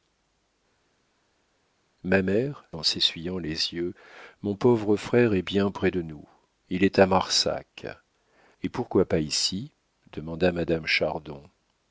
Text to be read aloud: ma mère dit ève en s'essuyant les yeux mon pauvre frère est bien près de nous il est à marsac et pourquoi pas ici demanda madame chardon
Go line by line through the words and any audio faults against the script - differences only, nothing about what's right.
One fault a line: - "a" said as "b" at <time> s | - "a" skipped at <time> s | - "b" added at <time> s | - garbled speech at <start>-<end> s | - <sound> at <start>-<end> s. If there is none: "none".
- "dit ève" skipped at 2.7 s